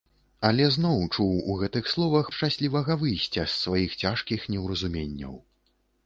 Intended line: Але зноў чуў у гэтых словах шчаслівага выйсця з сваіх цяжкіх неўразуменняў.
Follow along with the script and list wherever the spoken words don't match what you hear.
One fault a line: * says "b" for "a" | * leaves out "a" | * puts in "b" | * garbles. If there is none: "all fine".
all fine